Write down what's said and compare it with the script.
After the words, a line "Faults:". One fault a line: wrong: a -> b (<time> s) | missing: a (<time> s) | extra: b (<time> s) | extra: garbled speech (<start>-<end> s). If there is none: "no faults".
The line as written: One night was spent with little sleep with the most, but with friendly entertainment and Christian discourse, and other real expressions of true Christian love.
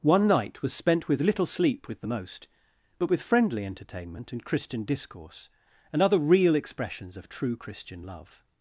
One night was spent with little sleep with the most, but with friendly entertainment and Christian discourse, and other real expressions of true Christian love.
Faults:
no faults